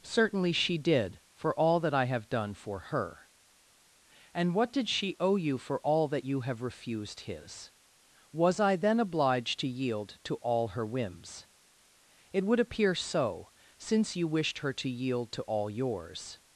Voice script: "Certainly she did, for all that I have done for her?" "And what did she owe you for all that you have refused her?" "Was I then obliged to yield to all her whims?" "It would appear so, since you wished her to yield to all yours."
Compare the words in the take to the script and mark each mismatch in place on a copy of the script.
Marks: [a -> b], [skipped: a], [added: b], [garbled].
"Certainly she did, for all that I have done for her?" "And what did she owe you for all that you have refused [her?" -> his] "Was I then obliged to yield to all her whims?" "It would appear so, since you wished her to yield to all yours."